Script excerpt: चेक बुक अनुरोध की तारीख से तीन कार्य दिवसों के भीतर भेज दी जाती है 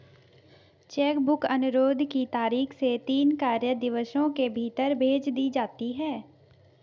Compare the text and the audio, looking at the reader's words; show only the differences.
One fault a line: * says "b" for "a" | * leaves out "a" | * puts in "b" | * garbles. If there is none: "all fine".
all fine